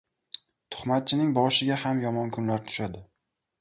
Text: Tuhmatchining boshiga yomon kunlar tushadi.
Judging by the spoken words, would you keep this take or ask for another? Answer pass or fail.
fail